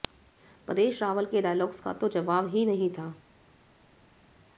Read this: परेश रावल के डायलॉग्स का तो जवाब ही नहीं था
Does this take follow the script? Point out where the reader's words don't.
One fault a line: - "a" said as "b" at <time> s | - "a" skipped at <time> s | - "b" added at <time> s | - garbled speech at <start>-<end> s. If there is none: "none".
none